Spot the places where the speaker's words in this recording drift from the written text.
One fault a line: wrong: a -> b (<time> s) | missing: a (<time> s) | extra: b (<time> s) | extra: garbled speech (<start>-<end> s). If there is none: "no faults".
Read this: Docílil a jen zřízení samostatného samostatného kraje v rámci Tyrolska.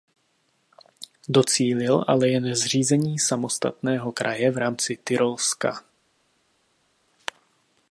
wrong: a -> ale (2.1 s)
missing: samostatného (4.1 s)